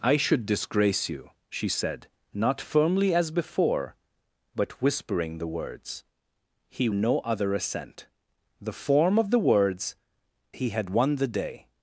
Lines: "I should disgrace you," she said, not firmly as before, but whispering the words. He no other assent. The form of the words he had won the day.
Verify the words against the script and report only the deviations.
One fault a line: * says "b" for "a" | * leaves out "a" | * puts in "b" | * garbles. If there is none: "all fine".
all fine